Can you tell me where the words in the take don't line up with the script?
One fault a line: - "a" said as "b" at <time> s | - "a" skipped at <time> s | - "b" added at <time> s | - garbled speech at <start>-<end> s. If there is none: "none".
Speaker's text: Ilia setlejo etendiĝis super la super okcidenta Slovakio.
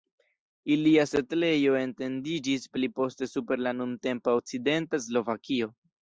- "pli poste" added at 2.8 s
- "super" said as "nuntempa" at 3.8 s